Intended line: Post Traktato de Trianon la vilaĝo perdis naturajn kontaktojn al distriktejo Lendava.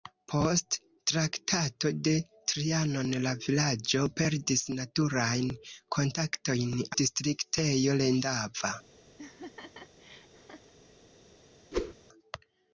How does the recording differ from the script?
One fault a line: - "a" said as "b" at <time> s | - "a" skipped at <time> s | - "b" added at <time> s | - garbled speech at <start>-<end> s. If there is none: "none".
- "al" skipped at 6.7 s